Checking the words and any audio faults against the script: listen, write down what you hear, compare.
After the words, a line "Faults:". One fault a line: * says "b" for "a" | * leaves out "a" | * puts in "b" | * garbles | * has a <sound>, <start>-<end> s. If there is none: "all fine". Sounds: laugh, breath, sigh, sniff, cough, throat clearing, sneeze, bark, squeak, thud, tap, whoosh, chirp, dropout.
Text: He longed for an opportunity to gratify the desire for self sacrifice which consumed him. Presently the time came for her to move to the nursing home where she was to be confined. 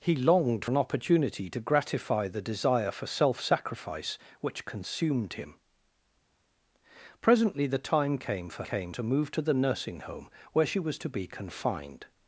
He longed an opportunity to gratify the desire for self sacrifice which consumed him. Presently the time came for came to move to the nursing home where she was to be confined.
Faults:
* leaves out "for"
* says "came" for "her"